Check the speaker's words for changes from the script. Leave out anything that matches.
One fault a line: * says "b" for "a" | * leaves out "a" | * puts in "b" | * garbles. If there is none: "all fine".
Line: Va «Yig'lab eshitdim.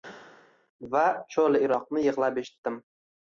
* puts in "Cho'li iroq»ni"